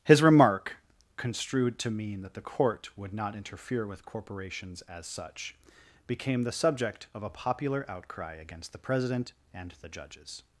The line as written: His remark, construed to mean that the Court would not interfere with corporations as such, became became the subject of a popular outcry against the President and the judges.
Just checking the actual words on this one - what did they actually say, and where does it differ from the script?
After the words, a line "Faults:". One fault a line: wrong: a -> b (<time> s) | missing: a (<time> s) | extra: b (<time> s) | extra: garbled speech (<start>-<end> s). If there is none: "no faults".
His remark, construed to mean that the Court would not interfere with corporations as such, became the subject of a popular outcry against the President and the judges.
Faults:
missing: became (6.4 s)